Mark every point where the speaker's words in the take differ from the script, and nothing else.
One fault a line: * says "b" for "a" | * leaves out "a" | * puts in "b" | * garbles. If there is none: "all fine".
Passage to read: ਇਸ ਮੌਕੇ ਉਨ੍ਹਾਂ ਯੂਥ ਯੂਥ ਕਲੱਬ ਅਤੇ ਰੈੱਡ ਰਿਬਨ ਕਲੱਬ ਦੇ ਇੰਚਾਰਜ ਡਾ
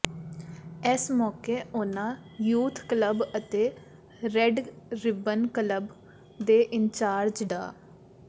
* leaves out "ਯੂਥ"